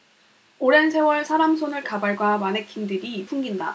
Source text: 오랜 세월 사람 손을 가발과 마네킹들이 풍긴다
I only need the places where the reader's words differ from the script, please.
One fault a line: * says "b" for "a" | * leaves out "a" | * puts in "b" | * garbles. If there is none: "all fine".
all fine